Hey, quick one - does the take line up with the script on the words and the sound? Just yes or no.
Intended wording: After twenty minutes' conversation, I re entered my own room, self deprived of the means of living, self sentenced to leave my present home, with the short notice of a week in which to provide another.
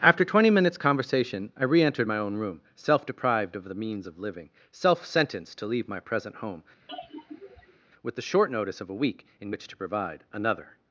no